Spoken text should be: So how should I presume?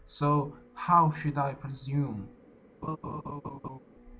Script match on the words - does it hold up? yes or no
yes